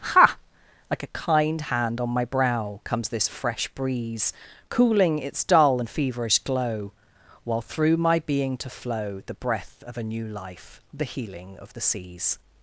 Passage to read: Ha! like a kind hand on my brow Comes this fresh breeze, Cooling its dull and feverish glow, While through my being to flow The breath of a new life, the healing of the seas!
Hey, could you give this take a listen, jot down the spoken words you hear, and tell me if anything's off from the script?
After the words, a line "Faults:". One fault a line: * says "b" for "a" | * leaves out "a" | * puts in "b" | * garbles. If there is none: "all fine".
Ha! like a kind hand on my brow Comes this fresh breeze, Cooling its dull and feverish glow, While through my being to flow The breath of a new life, the healing of the seas!
Faults:
all fine